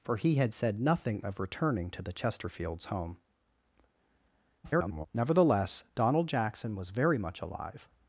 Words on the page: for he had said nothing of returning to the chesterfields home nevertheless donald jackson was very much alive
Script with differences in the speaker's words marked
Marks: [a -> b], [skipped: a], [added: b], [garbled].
for he had said nothing of returning to the chesterfields home [garbled] nevertheless donald jackson was very much alive